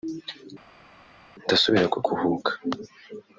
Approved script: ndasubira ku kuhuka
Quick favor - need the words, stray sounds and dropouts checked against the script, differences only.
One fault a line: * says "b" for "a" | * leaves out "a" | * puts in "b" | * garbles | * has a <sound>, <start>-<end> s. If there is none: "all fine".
all fine